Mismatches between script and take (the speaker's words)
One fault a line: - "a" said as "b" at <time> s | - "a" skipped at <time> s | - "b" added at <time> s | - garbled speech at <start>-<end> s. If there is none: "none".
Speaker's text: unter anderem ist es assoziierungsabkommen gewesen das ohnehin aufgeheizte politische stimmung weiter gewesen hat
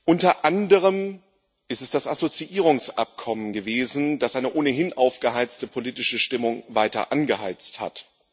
- "das" added at 1.9 s
- "eine" added at 4.3 s
- "gewesen" said as "angeheizt" at 7.1 s